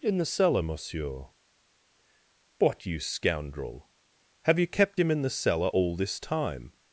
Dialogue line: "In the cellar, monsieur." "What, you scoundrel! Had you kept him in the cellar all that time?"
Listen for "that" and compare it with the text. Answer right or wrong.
wrong